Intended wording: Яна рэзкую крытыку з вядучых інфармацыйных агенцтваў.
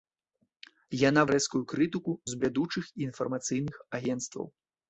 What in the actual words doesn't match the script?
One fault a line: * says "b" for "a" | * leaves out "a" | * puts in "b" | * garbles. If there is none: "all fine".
all fine